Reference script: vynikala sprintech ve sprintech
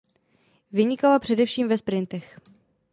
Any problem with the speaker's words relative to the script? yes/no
yes